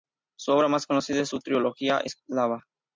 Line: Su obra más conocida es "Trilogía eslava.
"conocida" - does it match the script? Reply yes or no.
yes